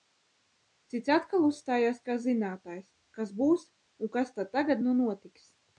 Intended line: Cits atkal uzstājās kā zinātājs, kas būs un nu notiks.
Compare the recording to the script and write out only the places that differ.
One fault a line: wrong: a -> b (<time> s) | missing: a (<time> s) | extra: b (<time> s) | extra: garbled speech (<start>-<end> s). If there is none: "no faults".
extra: kas tad tagad (4.2 s)